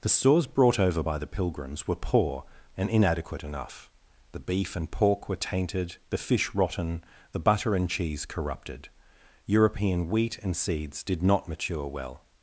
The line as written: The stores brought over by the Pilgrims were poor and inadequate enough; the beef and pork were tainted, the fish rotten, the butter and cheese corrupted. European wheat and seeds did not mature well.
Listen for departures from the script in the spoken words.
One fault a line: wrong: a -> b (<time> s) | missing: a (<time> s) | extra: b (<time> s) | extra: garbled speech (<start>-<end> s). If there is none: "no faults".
no faults